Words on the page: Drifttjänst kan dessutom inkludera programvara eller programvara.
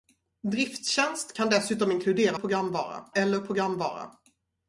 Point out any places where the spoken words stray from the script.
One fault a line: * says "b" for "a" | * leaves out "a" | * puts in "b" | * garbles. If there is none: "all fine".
all fine